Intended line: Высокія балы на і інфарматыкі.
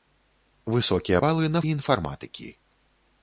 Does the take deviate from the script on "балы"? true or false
false